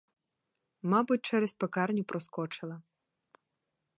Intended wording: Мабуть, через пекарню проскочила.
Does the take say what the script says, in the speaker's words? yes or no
yes